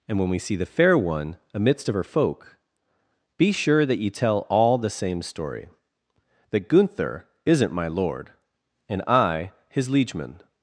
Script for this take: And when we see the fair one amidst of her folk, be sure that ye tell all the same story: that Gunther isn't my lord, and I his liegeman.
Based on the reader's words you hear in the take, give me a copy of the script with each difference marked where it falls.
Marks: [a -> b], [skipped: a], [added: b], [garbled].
And when we see the fair one amidst of her folk, be sure that ye tell all the same story: that Gunther isn't my lord, and I his liegeman.